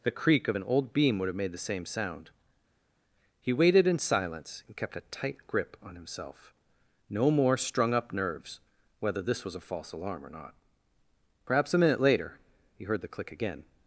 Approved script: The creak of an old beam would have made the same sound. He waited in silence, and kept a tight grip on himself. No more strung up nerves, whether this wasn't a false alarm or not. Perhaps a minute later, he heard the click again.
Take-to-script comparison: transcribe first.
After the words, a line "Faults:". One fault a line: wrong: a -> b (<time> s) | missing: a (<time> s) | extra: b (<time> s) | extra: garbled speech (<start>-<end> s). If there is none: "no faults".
The creak of an old beam would have made the same sound. He waited in silence, and kept a tight grip on himself. No more strung up nerves, whether this was a false alarm or not. Perhaps a minute later, he heard the click again.
Faults:
wrong: wasn't -> was (9.4 s)